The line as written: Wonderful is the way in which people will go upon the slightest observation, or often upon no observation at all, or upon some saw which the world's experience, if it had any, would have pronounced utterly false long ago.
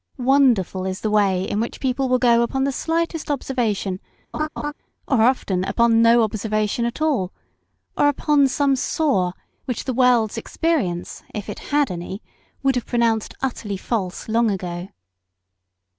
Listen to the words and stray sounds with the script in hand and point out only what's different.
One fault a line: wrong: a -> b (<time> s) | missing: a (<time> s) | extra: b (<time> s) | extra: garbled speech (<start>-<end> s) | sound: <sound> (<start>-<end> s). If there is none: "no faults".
sound: laugh (4.3-4.7 s)